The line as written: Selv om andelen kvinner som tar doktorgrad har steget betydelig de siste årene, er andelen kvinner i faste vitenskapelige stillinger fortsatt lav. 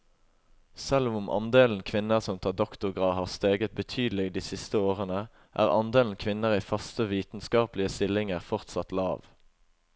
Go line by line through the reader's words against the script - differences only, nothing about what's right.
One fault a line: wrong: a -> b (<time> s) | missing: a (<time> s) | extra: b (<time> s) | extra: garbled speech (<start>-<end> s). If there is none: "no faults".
no faults